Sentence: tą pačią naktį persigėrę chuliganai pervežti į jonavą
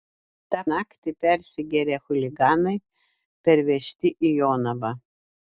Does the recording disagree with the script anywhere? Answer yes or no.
yes